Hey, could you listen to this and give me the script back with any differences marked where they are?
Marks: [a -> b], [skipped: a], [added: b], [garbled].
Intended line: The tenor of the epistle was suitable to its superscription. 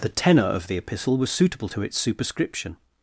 The tenor of the epistle was suitable to its superscription.